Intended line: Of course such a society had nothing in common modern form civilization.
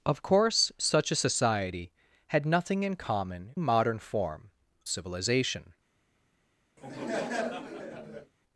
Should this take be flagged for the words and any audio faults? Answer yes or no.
yes